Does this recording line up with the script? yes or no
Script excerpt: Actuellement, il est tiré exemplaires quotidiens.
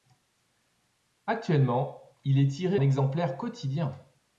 yes